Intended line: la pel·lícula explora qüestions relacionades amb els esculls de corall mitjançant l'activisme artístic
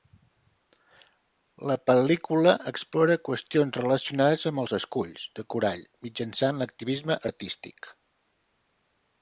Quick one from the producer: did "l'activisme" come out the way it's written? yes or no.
yes